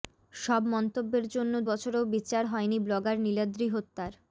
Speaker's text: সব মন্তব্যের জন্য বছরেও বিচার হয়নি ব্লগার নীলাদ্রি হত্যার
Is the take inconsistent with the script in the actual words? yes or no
no